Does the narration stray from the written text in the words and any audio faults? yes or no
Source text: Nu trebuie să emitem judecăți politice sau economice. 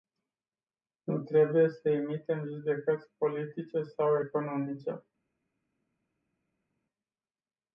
no